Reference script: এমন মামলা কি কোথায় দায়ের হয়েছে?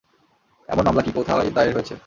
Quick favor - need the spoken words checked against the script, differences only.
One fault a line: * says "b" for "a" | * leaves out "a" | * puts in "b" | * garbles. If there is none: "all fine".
all fine